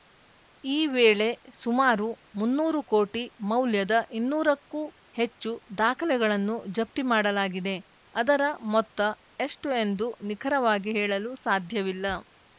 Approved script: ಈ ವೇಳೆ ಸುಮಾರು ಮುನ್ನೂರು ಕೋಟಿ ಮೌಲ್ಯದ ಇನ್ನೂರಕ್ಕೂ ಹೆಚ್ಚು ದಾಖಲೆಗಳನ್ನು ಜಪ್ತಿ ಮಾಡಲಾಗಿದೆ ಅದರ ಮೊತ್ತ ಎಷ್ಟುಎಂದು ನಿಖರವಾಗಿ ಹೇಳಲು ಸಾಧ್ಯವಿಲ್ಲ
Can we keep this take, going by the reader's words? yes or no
yes